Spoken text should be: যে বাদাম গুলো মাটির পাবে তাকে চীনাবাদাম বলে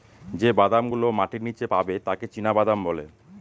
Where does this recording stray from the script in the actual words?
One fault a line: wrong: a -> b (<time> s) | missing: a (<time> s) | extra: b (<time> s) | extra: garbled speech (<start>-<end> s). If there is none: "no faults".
extra: নীচে (1.4 s)